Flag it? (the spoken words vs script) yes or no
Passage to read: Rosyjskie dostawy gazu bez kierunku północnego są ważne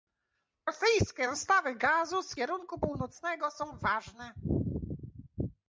yes